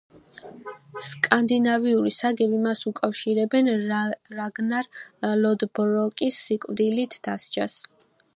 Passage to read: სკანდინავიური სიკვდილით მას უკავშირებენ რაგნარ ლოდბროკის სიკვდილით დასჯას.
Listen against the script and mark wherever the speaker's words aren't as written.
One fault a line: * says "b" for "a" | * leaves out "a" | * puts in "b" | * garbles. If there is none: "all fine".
* says "საგები" for "სიკვდილით"